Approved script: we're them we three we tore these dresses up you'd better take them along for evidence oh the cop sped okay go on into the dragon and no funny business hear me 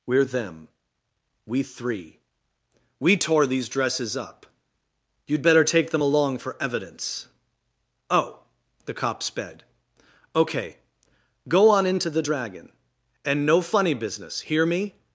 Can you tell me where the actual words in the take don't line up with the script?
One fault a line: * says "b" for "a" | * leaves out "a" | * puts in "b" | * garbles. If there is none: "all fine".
all fine